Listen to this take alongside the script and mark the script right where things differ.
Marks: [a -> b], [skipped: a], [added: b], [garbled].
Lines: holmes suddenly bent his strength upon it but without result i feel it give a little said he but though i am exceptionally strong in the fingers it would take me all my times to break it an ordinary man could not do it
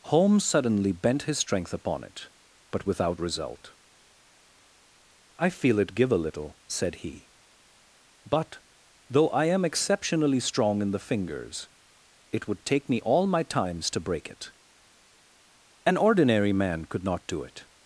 holmes suddenly bent his strength upon it but without result i feel it give a little said he but though i am exceptionally strong in the fingers it would take me all my times to break it an ordinary man could not do it